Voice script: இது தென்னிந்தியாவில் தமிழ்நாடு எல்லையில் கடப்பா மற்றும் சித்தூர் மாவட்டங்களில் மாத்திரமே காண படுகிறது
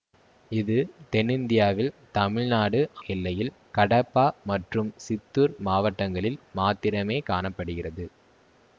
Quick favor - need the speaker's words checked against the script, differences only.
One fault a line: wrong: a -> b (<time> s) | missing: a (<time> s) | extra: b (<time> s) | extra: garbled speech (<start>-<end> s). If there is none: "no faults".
no faults